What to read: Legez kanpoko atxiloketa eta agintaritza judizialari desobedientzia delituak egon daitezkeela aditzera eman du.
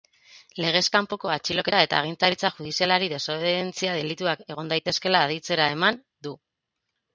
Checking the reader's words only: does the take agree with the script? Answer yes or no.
yes